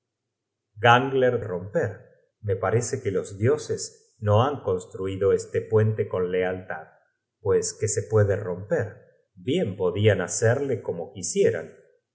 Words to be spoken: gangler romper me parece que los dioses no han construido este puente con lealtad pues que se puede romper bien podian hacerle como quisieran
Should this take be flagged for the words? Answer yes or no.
no